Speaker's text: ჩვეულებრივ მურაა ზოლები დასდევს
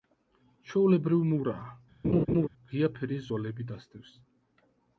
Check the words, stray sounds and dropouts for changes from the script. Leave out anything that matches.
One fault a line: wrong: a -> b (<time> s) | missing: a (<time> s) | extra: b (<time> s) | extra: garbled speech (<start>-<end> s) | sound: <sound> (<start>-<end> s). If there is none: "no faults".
sound: laugh (2.0-2.5 s)
extra: ღია ფერის (2.7 s)